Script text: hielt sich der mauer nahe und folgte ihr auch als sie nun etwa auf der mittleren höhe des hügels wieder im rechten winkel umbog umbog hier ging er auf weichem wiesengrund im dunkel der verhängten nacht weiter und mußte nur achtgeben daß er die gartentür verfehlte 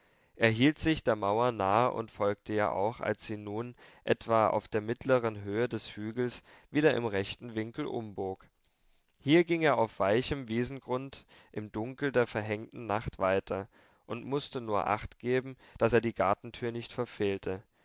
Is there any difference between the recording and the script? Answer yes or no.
yes